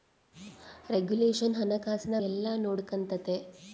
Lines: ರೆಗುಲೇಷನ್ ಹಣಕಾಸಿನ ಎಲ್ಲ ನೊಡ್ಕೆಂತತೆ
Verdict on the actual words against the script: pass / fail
pass